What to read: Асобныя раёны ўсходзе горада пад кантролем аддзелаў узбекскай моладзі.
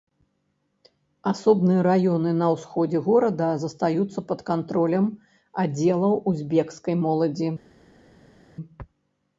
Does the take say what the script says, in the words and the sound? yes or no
no